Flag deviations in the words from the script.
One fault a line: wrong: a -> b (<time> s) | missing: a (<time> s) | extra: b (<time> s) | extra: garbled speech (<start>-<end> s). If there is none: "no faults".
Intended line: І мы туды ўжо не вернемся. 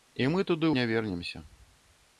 missing: ўжо (0.7 s)